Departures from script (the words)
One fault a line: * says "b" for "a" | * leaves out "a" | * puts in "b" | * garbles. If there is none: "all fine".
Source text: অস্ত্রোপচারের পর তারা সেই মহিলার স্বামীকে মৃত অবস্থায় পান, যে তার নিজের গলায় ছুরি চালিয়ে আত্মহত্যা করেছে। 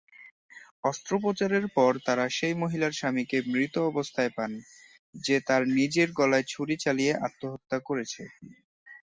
all fine